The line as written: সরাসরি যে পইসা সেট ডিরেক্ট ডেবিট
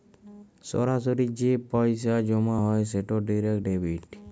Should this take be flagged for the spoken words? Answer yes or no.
yes